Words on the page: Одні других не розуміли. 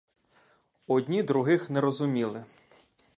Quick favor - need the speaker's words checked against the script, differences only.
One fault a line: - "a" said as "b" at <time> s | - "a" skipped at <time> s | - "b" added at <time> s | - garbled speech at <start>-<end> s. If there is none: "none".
none